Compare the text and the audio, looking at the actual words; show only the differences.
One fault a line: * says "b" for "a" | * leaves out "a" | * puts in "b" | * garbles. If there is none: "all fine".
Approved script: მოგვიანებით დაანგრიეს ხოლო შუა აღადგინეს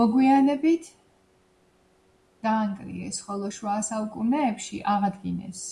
* puts in "საუკუნეებში"